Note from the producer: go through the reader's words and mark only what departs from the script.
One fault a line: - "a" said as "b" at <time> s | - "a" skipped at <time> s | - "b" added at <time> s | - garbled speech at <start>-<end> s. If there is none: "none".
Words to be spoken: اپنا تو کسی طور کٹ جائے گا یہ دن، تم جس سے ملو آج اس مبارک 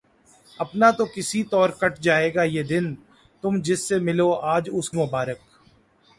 none